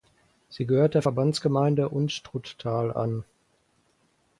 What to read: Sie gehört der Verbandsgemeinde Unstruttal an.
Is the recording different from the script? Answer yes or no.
no